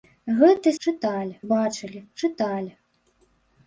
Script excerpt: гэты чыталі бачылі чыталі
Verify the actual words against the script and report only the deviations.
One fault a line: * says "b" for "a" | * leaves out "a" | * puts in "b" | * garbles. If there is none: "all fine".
all fine